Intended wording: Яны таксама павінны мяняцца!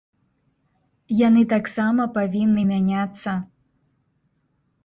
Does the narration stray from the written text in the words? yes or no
no